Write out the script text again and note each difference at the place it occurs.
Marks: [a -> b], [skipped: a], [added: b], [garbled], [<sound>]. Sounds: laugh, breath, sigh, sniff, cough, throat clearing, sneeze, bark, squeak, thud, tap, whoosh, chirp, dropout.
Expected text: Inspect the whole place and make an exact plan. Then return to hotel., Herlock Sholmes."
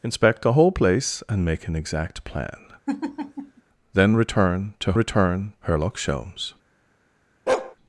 Inspect the whole place and make an exact plan. [laugh] Then return to [hotel., -> return] Herlock Sholmes." [bark]